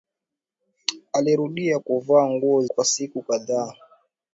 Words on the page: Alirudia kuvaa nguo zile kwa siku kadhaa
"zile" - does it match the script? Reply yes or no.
no